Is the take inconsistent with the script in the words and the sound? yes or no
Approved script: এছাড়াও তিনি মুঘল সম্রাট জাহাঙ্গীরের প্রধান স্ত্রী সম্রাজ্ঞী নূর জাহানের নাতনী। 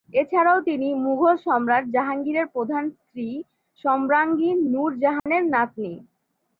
yes